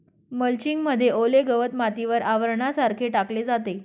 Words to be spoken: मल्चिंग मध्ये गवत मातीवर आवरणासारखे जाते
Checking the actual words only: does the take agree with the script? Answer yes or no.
no